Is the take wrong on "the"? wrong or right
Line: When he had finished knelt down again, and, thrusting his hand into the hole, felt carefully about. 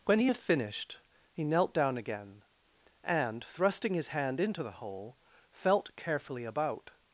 right